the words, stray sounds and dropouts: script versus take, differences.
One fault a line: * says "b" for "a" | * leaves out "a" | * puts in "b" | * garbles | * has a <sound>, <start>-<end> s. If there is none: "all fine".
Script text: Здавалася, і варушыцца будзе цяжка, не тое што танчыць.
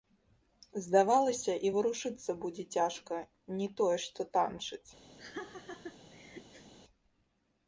* has a laugh, 5.2-6.7 s